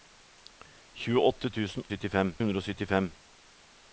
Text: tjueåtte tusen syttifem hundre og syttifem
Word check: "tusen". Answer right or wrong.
right